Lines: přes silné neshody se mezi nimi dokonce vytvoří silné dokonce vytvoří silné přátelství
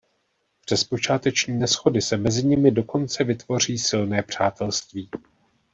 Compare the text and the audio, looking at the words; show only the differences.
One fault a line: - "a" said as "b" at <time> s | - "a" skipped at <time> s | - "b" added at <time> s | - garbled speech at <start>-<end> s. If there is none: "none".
- "silné" said as "počáteční" at 0.8 s
- "dokonce vytvoří silné" skipped at 4.2 s